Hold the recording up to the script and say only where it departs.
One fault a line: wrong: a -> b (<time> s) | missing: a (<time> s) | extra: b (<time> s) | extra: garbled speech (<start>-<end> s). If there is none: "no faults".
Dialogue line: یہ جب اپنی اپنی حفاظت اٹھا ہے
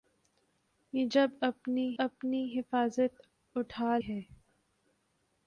no faults